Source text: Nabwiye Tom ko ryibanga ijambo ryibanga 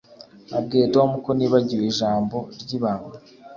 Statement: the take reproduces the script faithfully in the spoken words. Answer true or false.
false